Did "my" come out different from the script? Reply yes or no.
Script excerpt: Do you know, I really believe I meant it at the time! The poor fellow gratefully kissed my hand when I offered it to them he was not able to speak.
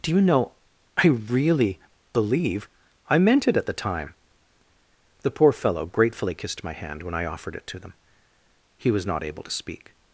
no